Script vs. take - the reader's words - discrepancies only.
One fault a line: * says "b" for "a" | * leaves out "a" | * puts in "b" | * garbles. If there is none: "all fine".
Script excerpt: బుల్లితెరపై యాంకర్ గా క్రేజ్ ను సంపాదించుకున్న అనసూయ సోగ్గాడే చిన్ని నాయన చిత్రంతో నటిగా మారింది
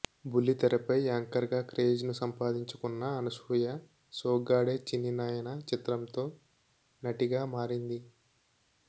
all fine